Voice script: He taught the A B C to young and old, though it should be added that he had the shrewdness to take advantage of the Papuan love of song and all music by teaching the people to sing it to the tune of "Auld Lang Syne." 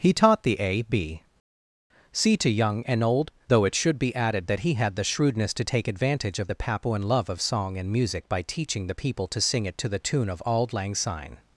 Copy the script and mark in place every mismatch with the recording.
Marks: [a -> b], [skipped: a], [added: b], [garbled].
He taught the A B C to young and old, though it should be added that he had the shrewdness to take advantage of the Papuan love of song and [skipped: all] music by teaching the people to sing it to the tune of "Auld Lang Syne."